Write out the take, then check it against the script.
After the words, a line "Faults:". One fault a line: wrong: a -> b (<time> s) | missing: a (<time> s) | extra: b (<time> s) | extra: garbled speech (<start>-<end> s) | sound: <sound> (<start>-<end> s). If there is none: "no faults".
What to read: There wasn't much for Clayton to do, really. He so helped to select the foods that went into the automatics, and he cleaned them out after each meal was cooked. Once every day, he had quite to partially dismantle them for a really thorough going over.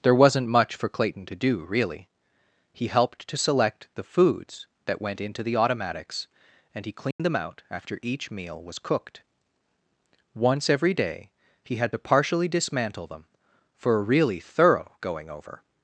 There wasn't much for Clayton to do, really. He helped to select the foods that went into the automatics, and he cleaned them out after each meal was cooked. Once every day, he had to partially dismantle them for a really thorough going over.
Faults:
missing: so (2.9 s)
sound: dropout (7.1-7.2 s)
missing: quite (11.9 s)